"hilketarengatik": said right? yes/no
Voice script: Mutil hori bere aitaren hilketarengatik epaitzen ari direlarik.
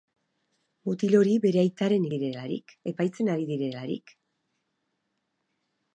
no